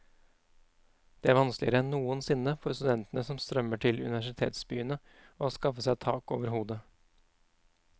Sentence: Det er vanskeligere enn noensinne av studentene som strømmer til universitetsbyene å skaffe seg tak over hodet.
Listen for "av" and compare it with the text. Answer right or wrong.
wrong